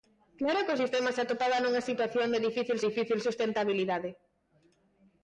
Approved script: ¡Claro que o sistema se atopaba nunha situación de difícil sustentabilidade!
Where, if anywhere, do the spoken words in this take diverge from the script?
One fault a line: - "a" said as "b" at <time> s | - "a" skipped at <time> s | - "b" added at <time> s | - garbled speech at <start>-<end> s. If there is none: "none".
- "difícil" added at 2.9 s